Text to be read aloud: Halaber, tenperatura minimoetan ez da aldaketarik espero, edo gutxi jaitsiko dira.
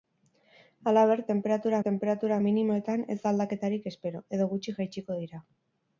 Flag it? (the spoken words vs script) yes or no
yes